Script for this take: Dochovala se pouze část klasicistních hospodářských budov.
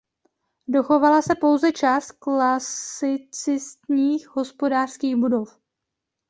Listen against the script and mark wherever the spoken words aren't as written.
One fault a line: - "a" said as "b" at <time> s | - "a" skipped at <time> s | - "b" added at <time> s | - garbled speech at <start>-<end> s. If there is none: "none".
none